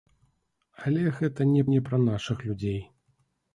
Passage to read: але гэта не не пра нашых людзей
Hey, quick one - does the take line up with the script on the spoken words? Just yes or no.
yes